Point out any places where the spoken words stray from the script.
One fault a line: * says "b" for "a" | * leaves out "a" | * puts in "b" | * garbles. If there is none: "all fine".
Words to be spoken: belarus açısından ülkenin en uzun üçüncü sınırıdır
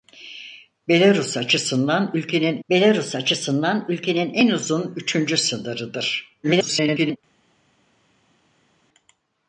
* puts in "belarus açısından ülkenin"
* garbles